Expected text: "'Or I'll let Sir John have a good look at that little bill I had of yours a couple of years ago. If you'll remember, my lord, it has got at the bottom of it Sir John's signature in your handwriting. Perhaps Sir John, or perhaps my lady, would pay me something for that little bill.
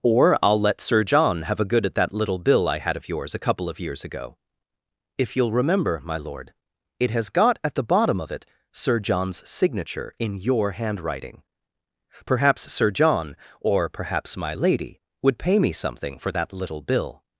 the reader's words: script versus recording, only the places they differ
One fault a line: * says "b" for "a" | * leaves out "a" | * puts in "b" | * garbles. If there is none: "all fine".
* leaves out "look"